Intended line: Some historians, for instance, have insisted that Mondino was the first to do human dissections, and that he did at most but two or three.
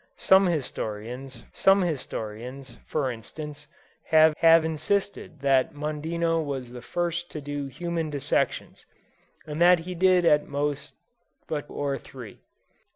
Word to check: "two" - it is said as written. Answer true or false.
false